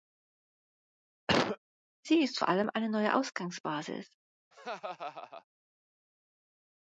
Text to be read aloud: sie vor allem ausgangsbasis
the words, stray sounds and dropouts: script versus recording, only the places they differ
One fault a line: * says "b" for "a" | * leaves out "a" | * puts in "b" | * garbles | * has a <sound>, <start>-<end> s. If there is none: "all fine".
* has a cough, 1.3-1.6 s
* puts in "ist"
* puts in "eine neue"
* has a laugh, 4.5-5.4 s